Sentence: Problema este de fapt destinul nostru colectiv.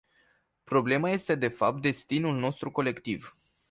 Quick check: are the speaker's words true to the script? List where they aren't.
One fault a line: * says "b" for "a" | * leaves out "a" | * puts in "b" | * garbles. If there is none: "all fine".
all fine